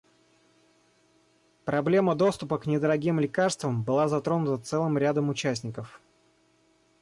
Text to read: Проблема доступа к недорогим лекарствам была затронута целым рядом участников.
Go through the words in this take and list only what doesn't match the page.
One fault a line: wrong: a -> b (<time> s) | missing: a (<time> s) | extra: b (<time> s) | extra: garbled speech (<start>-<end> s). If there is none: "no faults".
no faults